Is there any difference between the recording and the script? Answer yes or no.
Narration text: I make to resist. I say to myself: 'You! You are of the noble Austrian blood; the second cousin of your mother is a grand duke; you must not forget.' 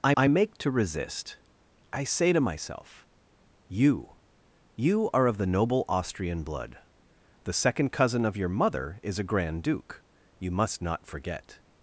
yes